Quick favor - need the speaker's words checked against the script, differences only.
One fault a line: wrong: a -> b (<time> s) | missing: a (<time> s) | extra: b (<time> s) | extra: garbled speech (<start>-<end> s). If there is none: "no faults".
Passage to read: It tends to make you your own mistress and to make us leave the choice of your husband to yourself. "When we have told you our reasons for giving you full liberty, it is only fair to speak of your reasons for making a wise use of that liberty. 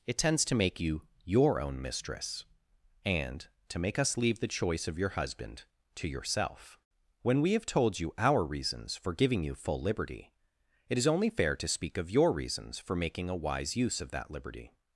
no faults